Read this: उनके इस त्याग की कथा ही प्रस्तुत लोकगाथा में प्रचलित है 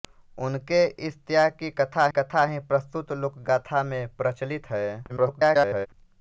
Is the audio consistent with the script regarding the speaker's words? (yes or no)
no